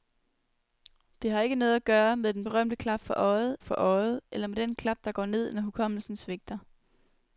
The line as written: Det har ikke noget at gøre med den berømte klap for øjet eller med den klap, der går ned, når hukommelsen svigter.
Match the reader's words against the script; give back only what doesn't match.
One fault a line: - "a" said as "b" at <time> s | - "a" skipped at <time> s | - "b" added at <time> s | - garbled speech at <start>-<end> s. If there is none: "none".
- "for øjet" added at 3.6 s